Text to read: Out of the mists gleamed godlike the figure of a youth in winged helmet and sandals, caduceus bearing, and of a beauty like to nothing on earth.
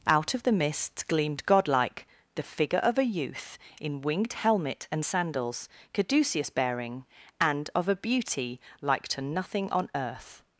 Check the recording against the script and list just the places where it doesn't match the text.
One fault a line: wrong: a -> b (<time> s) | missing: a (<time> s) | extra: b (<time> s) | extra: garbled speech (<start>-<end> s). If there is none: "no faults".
no faults